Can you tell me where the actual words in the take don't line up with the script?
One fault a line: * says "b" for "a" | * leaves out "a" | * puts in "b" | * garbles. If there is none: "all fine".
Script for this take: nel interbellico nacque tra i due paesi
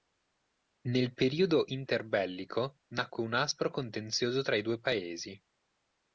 * puts in "periodo"
* puts in "un aspro contenzioso"